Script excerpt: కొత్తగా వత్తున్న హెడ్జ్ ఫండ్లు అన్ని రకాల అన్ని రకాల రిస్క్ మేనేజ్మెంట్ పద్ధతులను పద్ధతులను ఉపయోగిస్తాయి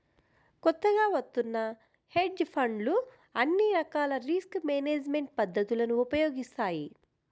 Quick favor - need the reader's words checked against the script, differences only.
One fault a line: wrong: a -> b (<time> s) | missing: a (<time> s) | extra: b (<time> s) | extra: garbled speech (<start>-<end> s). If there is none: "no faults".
missing: అన్ని రకాల (4.1 s)
missing: పద్ధతులను (6.0 s)